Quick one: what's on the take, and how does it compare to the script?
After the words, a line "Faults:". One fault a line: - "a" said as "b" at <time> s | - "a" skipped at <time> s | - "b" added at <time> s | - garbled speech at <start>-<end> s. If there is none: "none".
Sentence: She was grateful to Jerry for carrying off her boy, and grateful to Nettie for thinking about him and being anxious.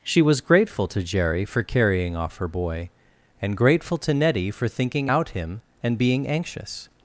She was grateful to Jerry for carrying off her boy, and grateful to Nettie for thinking out him and being anxious.
Faults:
- "about" said as "out" at 5.0 s